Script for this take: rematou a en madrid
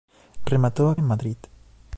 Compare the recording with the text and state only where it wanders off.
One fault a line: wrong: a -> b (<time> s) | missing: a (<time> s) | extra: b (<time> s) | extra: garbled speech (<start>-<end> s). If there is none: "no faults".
no faults